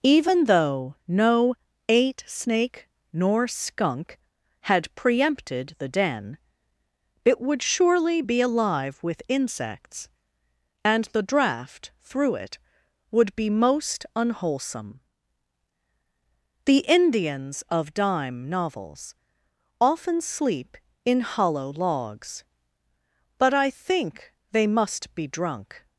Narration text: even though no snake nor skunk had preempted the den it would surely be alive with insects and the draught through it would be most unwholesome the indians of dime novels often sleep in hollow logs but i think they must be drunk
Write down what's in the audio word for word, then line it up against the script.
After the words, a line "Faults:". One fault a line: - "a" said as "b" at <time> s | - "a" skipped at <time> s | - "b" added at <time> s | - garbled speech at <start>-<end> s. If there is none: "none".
even though no eight snake nor skunk had preempted the den it would surely be alive with insects and the draught through it would be most unwholesome the indians of dime novels often sleep in hollow logs but i think they must be drunk
Faults:
- "eight" added at 1.9 s